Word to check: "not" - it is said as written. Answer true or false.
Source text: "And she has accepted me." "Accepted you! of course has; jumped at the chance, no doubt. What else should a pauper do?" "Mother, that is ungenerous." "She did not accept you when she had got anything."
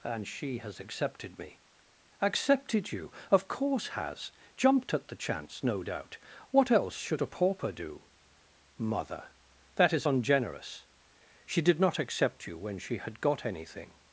true